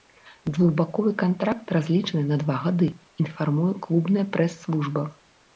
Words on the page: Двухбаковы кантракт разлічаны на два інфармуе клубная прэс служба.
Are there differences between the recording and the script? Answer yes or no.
yes